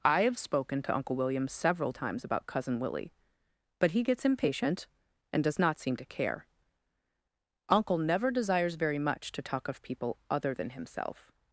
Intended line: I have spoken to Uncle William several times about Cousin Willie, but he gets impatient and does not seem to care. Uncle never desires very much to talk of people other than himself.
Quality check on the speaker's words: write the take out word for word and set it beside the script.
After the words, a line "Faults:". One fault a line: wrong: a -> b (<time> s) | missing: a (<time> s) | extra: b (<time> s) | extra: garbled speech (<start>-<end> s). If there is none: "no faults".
I have spoken to Uncle William several times about Cousin Willie, but he gets impatient and does not seem to care. Uncle never desires very much to talk of people other than himself.
Faults:
no faults